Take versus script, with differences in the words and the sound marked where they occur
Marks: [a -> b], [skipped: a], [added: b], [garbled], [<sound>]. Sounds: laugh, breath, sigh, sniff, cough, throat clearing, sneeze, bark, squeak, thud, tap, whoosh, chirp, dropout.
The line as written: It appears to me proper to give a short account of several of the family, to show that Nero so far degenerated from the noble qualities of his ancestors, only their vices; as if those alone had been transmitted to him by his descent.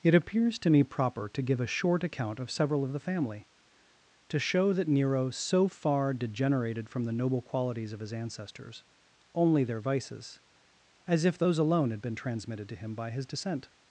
It appears to me proper to give a short account of several of the family, to show that Nero so far degenerated from the noble qualities of his ancestors, only their vices; as if those alone had been transmitted to him by his descent.